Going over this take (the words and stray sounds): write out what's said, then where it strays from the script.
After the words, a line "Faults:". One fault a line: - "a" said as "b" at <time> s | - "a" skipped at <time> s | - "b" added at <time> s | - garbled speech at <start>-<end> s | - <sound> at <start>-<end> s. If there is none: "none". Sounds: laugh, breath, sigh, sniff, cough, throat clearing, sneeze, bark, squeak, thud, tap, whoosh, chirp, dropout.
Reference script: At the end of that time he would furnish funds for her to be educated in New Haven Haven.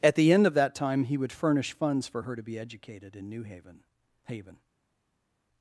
At the end of that time he would furnish funds for her to be educated in New Haven Haven.
Faults:
none